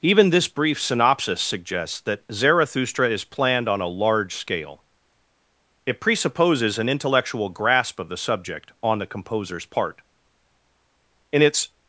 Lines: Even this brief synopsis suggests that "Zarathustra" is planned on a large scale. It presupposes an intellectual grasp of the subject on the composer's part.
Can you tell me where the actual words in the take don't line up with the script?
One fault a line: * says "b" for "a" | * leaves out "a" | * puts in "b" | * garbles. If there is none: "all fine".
* puts in "In its"